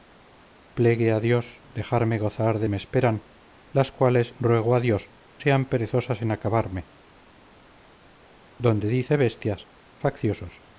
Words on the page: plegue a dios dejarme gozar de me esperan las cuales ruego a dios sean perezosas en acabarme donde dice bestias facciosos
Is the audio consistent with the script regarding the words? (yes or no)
yes